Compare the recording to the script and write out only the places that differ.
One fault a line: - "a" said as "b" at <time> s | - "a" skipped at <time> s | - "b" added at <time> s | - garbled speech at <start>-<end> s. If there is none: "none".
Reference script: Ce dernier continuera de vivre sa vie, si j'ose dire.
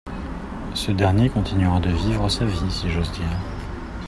none